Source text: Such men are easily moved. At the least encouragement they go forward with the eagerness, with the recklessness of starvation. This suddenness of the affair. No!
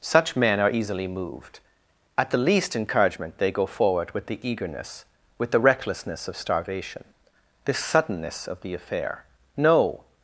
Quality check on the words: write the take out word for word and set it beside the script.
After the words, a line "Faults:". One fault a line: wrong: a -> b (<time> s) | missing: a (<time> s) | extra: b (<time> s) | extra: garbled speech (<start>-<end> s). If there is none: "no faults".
Such men are easily moved. At the least encouragement they go forward with the eagerness, with the recklessness of starvation. This suddenness of the affair. No!
Faults:
no faults